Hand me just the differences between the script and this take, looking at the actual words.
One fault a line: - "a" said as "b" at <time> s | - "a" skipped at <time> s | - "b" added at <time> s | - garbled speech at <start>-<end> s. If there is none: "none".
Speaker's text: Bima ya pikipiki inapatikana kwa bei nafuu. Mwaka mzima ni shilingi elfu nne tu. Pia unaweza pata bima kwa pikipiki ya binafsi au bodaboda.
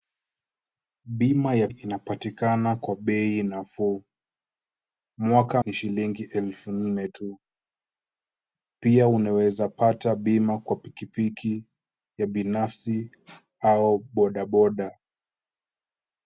- "pikipiki" skipped at 1.7 s
- "mzima" skipped at 5.6 s